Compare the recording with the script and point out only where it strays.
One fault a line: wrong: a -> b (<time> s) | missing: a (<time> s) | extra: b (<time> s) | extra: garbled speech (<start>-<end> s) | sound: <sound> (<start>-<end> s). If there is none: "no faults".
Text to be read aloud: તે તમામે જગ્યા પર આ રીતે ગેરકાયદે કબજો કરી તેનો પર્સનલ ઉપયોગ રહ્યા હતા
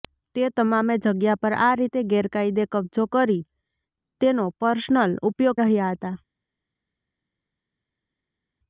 no faults